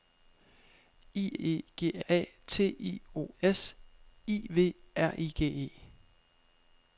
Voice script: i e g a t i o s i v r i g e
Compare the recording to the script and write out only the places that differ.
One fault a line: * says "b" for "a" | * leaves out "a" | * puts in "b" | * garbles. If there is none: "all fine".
all fine